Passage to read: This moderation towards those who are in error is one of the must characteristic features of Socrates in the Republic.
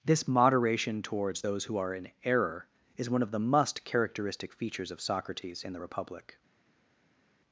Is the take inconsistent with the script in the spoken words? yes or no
no